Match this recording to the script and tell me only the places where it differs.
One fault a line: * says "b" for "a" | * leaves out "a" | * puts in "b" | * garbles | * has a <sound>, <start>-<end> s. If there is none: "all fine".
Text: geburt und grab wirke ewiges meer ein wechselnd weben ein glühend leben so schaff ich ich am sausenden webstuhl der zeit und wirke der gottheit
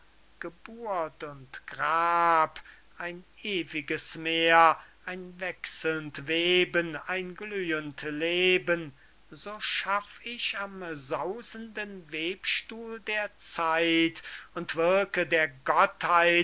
* says "ein" for "wirke"
* leaves out "ich"